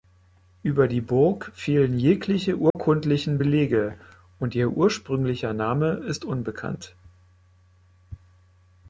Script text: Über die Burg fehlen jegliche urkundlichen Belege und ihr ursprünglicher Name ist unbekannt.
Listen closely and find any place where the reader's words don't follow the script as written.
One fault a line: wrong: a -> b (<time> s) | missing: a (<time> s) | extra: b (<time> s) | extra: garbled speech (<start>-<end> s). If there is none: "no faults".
no faults